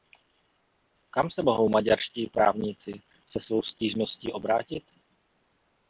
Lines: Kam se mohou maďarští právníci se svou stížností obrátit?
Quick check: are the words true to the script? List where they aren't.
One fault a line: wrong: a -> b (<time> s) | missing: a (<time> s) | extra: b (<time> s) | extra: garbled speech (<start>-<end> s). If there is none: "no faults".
no faults